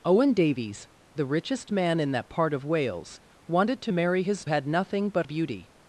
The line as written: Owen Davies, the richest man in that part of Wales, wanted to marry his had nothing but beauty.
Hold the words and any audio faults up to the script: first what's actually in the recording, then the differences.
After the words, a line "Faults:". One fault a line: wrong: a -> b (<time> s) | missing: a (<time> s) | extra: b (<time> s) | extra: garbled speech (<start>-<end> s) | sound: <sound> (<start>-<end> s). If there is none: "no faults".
Owen Davies, the richest man in that part of Wales, wanted to marry his had nothing but beauty.
Faults:
no faults